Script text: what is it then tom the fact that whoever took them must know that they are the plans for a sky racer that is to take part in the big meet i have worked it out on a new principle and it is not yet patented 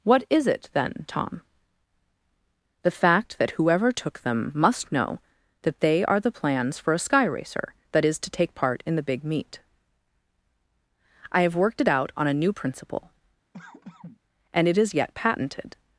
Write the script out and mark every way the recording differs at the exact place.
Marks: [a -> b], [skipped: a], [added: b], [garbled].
what is it then tom the fact that whoever took them must know that they are the plans for a sky racer that is to take part in the big meet i have worked it out on a new principle and it is [skipped: not] yet patented